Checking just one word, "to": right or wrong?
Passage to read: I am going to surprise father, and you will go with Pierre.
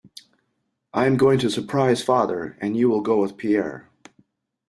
right